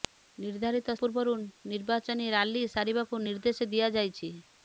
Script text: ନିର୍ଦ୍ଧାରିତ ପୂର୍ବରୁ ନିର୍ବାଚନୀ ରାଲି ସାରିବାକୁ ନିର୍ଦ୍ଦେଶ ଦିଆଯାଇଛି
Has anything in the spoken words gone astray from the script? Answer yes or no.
no